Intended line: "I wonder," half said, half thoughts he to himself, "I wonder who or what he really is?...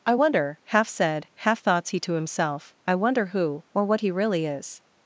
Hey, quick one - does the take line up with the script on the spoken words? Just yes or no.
yes